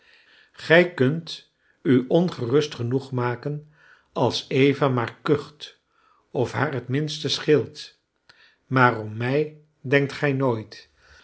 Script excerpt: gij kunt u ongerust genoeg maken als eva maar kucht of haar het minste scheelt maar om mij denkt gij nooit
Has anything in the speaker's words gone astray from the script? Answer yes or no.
no